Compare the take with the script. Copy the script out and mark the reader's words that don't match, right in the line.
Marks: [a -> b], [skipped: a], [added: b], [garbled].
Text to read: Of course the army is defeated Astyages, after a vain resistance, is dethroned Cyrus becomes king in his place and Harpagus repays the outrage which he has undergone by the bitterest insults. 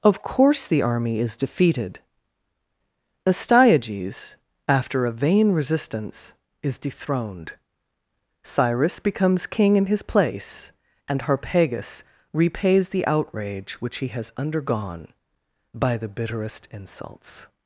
Of course the army is defeated Astyages, after a vain resistance, is dethroned Cyrus becomes king in his place and Harpagus repays the outrage which he has undergone by the bitterest insults.